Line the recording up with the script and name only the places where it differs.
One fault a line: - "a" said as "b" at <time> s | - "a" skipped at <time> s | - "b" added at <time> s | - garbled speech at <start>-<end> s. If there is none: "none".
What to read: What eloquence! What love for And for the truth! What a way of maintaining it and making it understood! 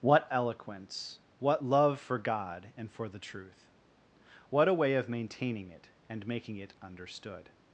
- "God" added at 2.2 s